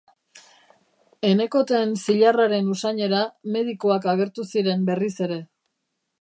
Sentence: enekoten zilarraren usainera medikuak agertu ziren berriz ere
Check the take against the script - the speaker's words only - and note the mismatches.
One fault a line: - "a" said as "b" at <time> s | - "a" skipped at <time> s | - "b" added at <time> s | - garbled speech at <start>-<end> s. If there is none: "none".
none